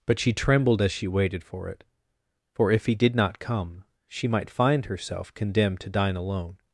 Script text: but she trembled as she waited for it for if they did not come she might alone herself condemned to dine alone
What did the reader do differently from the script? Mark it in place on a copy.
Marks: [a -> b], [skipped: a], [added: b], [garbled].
but she trembled as she waited for it for if [they -> he] did not come she might [alone -> find] herself condemned to dine alone